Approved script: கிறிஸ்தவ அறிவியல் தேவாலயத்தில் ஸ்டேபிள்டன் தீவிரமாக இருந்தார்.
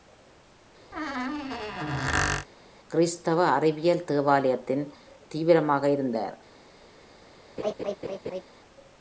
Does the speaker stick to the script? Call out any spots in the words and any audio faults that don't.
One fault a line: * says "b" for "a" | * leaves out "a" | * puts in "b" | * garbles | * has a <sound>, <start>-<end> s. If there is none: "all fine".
* has a squeak, 0.9-2.5 s
* leaves out "ஸ்டேபிள்டன்"
* has a laugh, 7.6-8.4 s